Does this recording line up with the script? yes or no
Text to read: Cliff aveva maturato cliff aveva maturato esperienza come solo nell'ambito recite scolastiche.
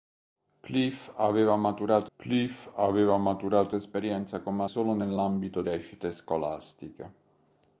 yes